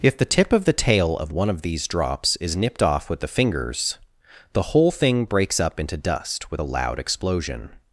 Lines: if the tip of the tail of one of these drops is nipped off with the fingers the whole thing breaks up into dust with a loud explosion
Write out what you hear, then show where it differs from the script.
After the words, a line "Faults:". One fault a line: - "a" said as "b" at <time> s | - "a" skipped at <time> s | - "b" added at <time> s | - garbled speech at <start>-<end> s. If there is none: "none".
if the tip of the tail of one of these drops is nipped off with the fingers the whole thing breaks up into dust with a loud explosion
Faults:
none